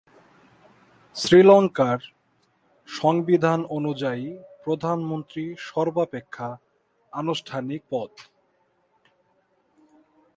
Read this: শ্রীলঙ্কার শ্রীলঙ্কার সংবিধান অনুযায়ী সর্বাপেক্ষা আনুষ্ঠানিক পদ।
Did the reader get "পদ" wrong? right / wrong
right